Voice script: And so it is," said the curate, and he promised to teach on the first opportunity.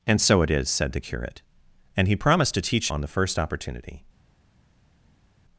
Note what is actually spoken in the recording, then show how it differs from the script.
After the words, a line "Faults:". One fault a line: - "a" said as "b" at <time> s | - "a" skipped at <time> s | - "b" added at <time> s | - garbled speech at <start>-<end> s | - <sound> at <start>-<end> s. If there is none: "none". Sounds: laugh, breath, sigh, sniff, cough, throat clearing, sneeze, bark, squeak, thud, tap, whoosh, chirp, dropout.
And so it is," said the curate, and he promised to teach on the first opportunity.
Faults:
none